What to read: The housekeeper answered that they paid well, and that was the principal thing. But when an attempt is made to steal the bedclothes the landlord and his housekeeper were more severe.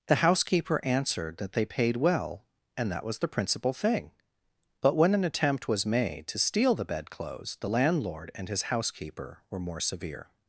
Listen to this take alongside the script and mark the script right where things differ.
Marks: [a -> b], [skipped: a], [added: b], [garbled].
The housekeeper answered that they paid well, and that was the principal thing. But when an attempt [is -> was] made to steal the bedclothes the landlord and his housekeeper were more severe.